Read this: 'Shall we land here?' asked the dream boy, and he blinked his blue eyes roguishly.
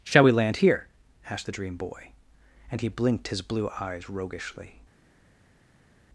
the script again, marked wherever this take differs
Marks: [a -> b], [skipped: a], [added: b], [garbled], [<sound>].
'Shall we land here?' asked the dream boy, and he blinked his blue eyes roguishly.